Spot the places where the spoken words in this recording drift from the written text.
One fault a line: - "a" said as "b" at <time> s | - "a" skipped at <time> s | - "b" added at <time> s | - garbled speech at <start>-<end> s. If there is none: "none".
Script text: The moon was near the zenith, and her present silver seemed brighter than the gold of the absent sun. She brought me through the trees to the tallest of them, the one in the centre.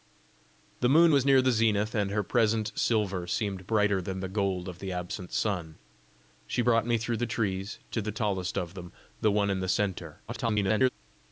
- garbled speech at 10.3-10.9 s